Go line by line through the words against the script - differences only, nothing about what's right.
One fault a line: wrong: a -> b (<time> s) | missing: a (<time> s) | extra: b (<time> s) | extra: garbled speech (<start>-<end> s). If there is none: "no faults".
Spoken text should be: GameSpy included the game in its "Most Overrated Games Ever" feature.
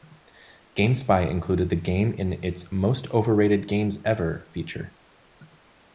no faults